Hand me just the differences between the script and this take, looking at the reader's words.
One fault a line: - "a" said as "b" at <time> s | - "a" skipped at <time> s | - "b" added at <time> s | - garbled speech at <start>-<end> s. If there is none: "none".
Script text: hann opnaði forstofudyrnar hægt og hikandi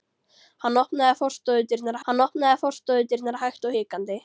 - "hann opnaði forstofudyrnar" added at 2.1 s